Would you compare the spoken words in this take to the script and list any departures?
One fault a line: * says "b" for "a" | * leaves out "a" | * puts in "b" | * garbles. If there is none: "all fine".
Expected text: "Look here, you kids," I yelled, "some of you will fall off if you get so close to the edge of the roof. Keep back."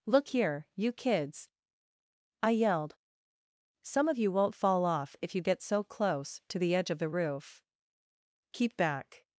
* says "won't" for "will"